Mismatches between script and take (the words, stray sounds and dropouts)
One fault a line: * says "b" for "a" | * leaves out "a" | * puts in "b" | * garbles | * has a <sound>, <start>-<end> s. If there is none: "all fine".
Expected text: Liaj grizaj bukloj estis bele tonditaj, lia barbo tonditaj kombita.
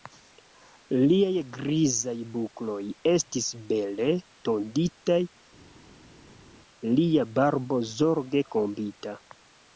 * says "zorge" for "tonditaj"